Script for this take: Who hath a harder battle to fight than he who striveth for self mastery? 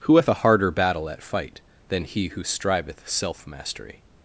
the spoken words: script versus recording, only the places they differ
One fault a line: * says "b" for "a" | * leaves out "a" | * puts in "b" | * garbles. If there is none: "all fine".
* says "at" for "to"
* leaves out "for"